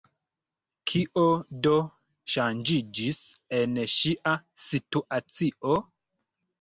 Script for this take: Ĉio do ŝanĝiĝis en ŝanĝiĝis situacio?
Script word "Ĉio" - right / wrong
wrong